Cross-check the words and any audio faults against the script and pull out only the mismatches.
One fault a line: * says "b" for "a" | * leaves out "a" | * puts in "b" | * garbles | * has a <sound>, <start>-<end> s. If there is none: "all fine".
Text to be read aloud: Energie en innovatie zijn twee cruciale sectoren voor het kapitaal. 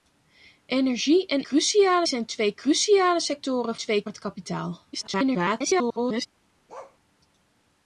* says "cruciale" for "innovatie"
* says "twee" for "voor"
* garbles
* has a bark, 6.7-7.0 s